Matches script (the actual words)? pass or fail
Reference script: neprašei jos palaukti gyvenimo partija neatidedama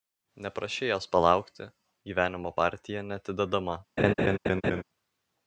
pass